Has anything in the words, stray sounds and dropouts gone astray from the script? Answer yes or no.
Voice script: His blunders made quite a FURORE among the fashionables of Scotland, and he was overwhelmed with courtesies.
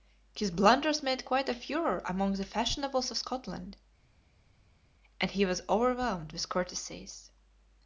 no